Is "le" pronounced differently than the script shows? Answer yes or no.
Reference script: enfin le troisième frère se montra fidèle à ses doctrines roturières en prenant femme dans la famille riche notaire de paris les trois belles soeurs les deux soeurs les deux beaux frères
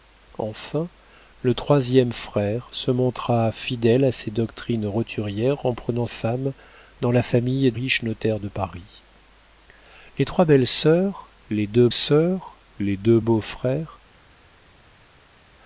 no